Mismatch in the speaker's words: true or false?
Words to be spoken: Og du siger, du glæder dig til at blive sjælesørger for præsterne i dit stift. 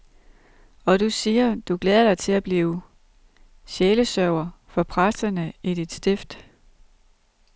false